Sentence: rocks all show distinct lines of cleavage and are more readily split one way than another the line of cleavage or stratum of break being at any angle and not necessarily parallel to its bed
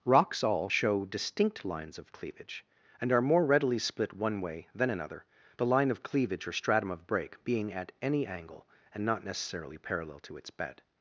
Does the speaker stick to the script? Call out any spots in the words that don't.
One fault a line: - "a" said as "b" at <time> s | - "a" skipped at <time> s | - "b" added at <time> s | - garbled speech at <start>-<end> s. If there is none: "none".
none